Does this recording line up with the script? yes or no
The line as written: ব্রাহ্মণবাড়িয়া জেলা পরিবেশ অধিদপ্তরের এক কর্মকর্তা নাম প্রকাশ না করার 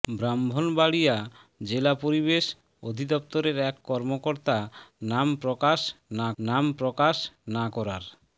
no